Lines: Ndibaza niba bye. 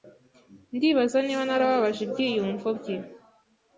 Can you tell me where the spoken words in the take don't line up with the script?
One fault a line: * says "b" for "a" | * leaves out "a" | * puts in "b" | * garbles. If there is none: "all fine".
* puts in "narababaje ibyiyumvo"